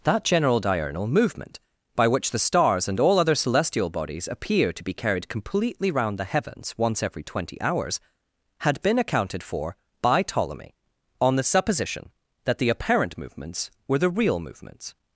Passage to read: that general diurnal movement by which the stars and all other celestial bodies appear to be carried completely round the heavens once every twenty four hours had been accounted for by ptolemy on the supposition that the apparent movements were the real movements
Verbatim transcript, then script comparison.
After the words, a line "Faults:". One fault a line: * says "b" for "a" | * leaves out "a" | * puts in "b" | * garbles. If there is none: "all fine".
that general diurnal movement by which the stars and all other celestial bodies appear to be carried completely round the heavens once every twenty hours had been accounted for by ptolemy on the supposition that the apparent movements were the real movements
Faults:
* leaves out "four"